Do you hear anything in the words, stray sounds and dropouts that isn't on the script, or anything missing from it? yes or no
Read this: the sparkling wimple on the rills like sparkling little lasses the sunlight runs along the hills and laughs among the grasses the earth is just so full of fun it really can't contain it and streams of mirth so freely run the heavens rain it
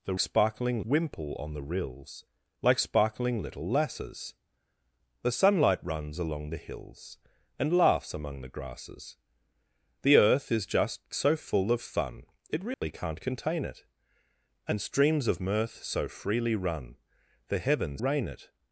yes